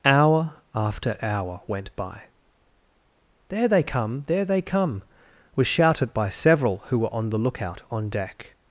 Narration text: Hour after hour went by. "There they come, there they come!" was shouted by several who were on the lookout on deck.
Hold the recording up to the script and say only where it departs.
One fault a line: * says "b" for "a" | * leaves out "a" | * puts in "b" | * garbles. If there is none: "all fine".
all fine